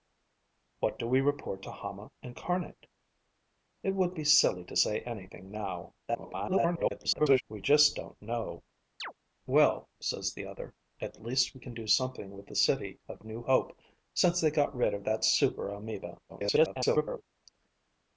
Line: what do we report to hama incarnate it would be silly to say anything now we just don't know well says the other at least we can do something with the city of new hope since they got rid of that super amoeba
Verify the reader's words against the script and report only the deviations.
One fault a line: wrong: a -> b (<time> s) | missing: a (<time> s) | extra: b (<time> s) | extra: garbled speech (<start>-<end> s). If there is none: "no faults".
extra: garbled speech (6.1-7.4 s)
extra: garbled speech (16.3-17.2 s)